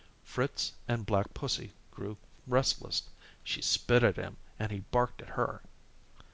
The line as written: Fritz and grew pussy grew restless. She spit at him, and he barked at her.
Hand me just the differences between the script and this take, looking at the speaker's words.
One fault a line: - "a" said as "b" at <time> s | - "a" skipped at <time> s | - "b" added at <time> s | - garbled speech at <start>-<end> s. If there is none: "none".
- "grew" said as "black" at 1.1 s